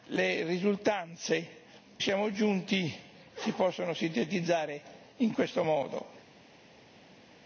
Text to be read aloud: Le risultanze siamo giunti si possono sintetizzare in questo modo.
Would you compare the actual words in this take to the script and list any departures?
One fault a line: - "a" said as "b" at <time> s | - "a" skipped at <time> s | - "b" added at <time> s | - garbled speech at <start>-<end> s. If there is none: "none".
none